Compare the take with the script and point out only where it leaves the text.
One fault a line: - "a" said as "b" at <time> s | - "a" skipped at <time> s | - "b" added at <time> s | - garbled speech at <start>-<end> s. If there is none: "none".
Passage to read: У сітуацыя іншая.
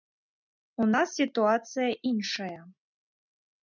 - "нас" added at 0.9 s